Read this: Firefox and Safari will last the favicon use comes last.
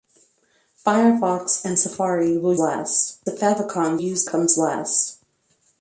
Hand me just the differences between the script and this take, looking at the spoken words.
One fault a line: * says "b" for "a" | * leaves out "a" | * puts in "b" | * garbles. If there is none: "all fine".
all fine